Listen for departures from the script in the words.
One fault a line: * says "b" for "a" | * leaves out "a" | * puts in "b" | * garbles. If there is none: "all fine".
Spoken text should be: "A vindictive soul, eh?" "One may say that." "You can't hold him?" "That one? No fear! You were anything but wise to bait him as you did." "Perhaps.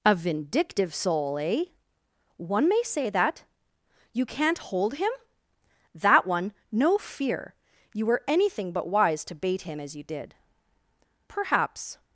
all fine